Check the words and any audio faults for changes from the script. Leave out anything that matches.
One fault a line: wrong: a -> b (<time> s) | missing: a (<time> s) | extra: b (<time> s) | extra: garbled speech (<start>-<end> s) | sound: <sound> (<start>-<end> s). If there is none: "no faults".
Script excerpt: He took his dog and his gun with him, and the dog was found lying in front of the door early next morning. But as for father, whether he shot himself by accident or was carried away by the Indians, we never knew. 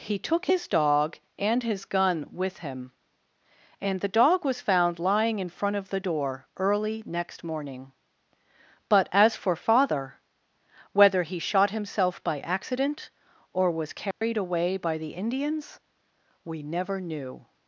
sound: dropout (14.1-14.2 s)